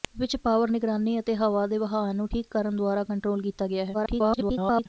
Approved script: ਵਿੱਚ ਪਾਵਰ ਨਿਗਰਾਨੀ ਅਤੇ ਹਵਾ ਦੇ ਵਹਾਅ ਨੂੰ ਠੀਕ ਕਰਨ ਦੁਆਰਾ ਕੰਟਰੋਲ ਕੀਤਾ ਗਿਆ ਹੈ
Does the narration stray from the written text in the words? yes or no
yes